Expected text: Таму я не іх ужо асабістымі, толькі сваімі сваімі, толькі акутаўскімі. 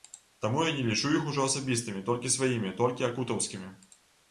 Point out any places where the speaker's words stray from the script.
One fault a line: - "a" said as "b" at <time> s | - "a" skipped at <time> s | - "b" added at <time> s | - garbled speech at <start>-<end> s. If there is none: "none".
- "лічу" added at 0.9 s
- "сваімі" skipped at 2.7 s